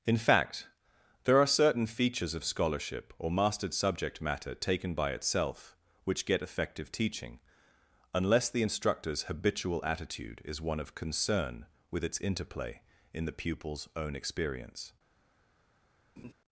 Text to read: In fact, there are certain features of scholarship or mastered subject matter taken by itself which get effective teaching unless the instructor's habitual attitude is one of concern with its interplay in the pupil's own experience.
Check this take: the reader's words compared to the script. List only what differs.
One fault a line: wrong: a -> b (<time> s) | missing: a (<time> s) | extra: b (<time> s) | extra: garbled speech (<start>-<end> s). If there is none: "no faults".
no faults